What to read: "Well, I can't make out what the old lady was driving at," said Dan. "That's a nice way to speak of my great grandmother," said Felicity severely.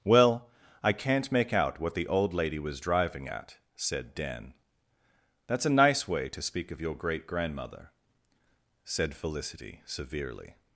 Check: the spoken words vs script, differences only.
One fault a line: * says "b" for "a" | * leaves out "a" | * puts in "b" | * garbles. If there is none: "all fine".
* says "your" for "my"